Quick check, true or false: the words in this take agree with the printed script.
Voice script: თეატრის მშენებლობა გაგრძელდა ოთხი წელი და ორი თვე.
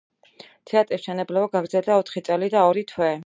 true